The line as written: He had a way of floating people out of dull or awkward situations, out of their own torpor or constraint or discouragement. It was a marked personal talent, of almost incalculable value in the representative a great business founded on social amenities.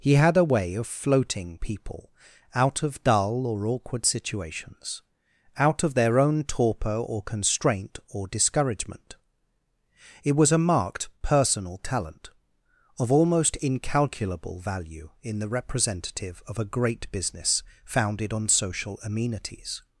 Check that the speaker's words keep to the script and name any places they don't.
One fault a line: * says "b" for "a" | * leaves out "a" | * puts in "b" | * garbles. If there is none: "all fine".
* puts in "of"